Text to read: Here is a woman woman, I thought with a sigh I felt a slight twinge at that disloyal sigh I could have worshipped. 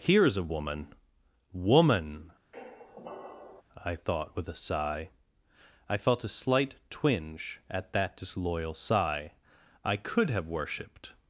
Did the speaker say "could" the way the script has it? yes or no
yes